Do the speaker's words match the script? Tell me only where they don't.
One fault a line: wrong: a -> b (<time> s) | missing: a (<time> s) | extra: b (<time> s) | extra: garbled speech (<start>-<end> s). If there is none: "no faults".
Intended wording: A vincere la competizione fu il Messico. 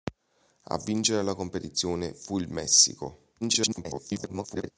extra: garbled speech (3.4-4.7 s)